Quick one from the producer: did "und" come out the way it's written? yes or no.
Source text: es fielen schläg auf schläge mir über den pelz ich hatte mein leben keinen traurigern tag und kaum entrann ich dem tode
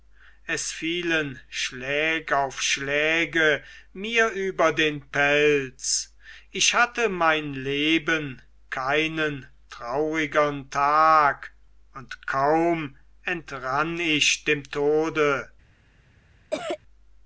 yes